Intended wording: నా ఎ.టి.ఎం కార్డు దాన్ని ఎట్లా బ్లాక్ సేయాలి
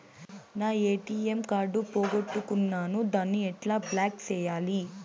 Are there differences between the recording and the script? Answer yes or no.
yes